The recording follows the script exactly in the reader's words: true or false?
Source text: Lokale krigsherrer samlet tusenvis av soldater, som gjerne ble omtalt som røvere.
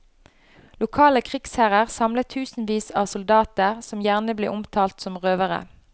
true